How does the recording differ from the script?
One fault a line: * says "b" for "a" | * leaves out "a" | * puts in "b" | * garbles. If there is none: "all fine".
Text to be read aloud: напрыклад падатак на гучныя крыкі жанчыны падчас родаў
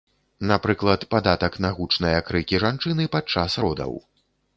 all fine